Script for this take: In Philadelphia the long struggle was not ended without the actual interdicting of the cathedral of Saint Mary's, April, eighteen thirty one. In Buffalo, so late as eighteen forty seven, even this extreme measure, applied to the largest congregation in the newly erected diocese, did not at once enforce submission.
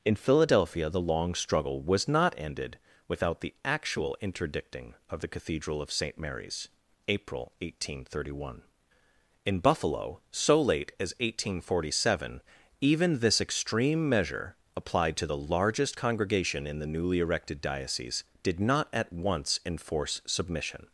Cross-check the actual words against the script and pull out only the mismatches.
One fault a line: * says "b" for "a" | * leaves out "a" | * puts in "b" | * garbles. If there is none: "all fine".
all fine